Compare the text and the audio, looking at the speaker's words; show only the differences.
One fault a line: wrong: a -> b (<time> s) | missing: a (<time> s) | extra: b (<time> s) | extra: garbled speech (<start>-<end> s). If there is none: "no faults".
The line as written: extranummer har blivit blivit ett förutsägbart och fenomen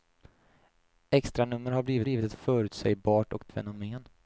no faults